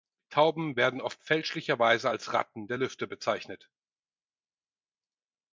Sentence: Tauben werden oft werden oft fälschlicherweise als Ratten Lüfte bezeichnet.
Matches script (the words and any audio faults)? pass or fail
fail